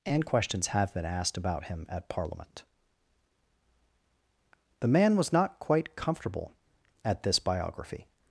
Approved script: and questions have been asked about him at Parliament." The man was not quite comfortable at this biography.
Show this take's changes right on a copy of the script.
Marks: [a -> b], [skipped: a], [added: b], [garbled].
and questions have been asked about him at Parliament." The man was not quite comfortable at this biography.